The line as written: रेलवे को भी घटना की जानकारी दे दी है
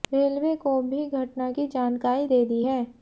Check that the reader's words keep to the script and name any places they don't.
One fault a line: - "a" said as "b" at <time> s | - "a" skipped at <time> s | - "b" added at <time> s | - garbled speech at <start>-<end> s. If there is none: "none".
none